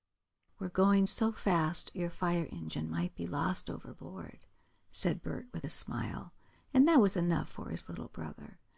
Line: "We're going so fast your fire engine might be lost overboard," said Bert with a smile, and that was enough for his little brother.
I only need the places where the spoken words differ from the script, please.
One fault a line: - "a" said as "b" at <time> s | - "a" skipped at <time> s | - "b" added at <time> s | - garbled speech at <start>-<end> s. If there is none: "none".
none